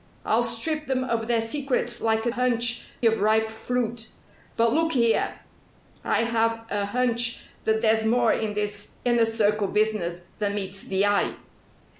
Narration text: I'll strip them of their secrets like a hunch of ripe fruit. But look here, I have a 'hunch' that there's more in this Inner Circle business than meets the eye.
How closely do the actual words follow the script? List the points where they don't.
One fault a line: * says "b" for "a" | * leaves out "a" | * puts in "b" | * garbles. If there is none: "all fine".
all fine